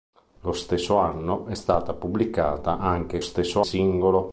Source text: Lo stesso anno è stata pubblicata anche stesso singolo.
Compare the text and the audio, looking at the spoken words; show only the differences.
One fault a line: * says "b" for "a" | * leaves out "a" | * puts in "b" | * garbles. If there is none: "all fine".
all fine